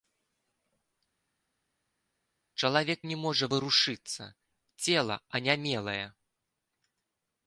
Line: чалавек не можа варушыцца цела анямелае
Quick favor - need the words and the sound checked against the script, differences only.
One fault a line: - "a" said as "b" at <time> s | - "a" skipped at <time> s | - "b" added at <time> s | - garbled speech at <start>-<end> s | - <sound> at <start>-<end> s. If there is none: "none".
none